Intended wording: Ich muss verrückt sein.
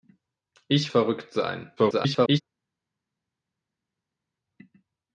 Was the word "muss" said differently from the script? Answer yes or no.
yes